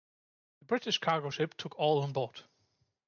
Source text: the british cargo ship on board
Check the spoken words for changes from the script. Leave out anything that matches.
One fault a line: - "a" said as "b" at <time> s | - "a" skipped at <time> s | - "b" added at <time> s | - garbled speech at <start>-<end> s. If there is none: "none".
- "took all" added at 1.6 s